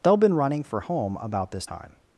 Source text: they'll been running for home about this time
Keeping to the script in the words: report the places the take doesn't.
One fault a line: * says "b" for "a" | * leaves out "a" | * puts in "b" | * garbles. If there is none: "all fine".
all fine